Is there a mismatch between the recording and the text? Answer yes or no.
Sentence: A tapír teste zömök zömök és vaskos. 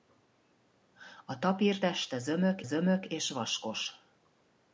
no